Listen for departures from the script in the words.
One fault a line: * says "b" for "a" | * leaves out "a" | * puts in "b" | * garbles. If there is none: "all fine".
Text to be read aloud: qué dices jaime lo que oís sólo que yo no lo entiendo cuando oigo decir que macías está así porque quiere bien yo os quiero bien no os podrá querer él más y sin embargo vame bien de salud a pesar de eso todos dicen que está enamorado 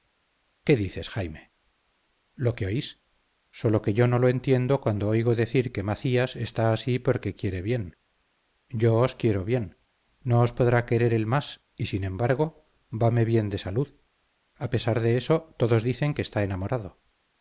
all fine